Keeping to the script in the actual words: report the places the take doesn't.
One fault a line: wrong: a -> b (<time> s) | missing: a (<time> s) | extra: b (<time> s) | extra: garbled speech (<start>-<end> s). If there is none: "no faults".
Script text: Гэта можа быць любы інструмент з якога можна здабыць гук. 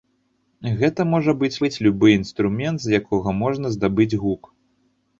extra: быць (1.6 s)